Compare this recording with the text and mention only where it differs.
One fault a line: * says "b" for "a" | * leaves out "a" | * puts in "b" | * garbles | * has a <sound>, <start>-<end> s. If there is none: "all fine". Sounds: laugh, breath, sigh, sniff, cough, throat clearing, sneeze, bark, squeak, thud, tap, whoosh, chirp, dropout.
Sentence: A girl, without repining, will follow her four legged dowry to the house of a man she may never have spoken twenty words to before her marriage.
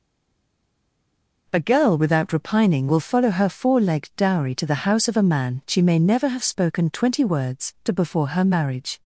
all fine